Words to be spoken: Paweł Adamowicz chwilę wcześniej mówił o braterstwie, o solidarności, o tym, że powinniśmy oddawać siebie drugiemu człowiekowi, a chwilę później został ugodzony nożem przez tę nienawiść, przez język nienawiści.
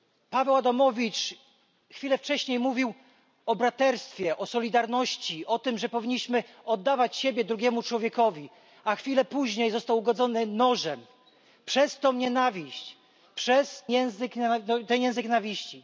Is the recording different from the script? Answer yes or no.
no